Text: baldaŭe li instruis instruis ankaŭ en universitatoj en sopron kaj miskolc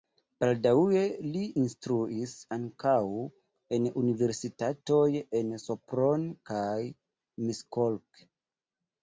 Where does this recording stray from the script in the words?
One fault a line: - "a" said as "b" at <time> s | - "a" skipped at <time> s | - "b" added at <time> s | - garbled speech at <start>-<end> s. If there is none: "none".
- "instruis" skipped at 2.3 s